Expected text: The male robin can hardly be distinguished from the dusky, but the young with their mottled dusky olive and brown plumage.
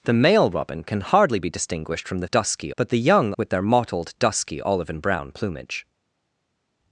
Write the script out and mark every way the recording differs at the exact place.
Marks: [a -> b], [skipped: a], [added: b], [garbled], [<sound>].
The male robin can hardly be distinguished from the dusky, but the young with their mottled dusky olive and brown plumage.